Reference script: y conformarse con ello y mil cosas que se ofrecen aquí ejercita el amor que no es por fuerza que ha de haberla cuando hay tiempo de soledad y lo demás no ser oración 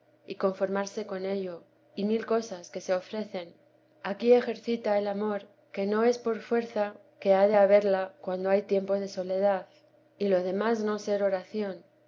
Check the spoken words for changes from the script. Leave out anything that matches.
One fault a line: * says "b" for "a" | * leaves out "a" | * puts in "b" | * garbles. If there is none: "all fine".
all fine